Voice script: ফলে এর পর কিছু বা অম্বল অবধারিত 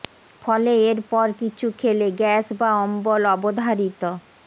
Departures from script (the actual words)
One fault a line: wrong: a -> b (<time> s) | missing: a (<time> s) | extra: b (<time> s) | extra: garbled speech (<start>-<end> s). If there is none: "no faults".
extra: খেলে গ্যাস (1.8 s)